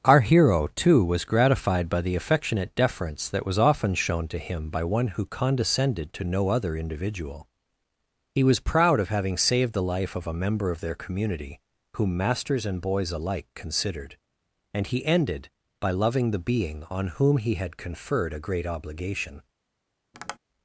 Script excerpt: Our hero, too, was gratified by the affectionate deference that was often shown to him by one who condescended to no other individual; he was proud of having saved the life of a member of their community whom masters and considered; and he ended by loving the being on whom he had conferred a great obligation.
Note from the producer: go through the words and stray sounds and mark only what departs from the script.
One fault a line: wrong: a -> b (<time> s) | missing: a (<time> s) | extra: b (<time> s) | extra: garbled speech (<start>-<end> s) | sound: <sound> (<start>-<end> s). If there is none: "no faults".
extra: boys alike (12.8 s)
sound: tap (20.1-20.4 s)